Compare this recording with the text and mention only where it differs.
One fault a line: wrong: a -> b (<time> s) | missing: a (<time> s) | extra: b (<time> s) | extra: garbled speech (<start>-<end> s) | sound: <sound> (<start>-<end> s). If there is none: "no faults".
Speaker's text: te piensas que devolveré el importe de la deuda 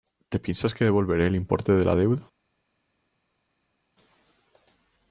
no faults